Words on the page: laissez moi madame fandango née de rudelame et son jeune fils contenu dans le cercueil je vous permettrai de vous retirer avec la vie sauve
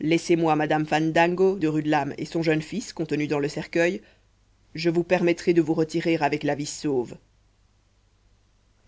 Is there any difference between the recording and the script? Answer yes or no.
yes